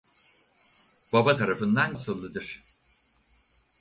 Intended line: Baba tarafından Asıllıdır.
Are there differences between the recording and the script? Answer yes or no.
no